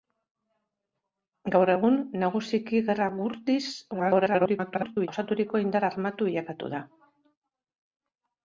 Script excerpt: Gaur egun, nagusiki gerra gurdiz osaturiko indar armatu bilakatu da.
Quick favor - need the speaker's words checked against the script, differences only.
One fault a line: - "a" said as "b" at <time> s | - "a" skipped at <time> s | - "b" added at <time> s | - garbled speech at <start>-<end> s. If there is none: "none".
- garbled speech at 3.9-5.1 s